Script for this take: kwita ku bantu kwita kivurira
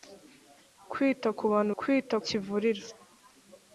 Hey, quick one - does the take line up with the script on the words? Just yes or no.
yes